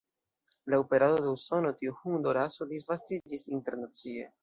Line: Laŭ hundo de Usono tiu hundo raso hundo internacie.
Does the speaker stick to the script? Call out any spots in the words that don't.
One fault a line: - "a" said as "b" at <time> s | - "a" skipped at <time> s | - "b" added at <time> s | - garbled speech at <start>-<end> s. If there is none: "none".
- "hundo" said as "perado" at 0.9 s
- "hundo" said as "disvastiĝis" at 2.8 s